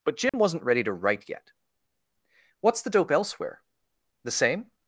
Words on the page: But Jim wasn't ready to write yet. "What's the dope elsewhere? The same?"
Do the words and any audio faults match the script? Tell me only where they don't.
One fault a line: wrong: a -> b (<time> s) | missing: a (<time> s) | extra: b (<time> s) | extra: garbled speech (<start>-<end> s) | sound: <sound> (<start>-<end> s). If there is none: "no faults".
sound: dropout (0.3-0.3 s)